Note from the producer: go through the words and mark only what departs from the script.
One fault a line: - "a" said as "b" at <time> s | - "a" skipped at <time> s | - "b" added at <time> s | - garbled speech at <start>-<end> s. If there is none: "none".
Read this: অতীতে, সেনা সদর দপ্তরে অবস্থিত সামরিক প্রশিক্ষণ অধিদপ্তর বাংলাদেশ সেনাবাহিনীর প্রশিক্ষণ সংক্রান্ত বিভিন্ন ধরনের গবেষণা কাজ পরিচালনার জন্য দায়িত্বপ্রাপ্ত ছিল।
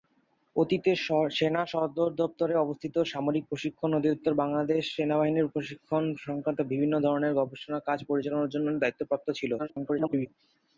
- garbled speech at 9.6-10.3 s